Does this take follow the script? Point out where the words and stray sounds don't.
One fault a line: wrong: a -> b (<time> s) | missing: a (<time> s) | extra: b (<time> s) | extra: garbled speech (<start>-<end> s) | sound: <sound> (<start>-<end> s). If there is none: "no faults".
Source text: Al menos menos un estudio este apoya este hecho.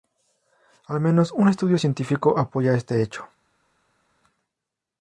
missing: menos (1.3 s)
wrong: este -> científico (1.8 s)